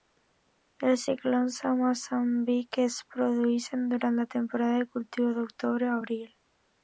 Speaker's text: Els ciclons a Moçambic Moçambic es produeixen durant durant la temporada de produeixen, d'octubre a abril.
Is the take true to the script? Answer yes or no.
no